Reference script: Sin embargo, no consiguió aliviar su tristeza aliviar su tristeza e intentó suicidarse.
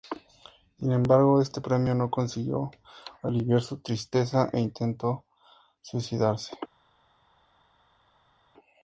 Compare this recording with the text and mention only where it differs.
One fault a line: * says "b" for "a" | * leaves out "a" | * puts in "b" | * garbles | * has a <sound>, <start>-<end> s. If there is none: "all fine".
* puts in "este premio"
* leaves out "aliviar su tristeza"